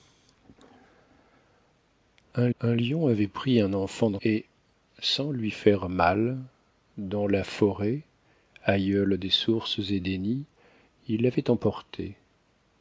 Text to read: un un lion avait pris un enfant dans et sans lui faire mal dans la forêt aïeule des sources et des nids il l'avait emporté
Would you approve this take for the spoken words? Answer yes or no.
yes